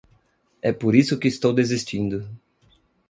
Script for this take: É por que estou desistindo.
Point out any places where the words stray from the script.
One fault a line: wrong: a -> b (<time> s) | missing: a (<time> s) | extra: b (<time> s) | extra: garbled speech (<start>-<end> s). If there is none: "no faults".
extra: isso (0.9 s)